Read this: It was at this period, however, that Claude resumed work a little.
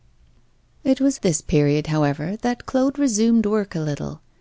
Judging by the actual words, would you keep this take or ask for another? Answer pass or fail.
fail